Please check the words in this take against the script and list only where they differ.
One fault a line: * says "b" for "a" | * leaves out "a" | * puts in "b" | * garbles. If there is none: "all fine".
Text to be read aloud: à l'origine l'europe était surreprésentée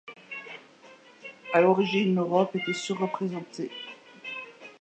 all fine